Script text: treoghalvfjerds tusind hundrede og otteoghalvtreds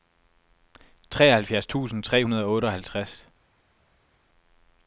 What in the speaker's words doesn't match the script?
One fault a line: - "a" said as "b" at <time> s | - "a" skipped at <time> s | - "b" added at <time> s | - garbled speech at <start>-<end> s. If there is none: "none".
- "tre" added at 2.0 s